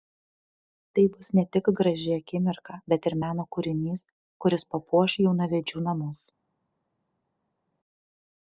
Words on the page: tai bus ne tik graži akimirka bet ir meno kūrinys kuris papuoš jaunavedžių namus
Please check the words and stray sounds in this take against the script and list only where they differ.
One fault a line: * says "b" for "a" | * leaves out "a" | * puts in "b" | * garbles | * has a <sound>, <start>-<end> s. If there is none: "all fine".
all fine